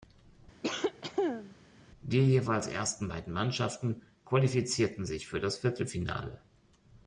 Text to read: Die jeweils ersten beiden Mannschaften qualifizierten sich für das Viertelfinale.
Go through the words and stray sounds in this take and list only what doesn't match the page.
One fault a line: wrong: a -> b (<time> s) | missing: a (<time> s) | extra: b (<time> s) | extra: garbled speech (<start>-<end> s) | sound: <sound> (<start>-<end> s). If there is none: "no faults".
sound: cough (0.6-1.6 s)